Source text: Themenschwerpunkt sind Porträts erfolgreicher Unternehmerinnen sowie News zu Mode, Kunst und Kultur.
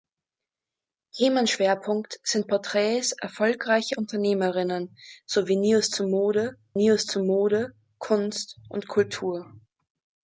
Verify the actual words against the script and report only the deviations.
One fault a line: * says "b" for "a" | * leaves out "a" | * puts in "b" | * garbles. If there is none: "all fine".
* puts in "News zu Mode"